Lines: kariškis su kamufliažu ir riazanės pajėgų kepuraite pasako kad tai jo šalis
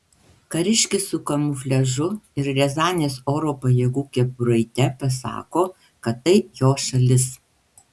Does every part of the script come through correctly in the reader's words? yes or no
no